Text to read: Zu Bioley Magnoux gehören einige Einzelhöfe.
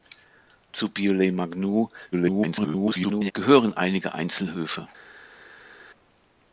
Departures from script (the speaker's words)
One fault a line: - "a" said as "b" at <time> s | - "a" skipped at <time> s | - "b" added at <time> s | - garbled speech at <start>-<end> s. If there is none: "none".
- garbled speech at 2.1-3.3 s